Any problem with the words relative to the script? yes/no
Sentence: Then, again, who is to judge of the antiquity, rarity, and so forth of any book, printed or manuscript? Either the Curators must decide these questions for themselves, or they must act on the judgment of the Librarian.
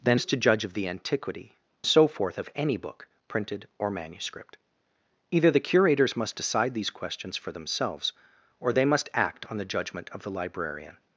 yes